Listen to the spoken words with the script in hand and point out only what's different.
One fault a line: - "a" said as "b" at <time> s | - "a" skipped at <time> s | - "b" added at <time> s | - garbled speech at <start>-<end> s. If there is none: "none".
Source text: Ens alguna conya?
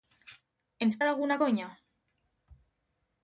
none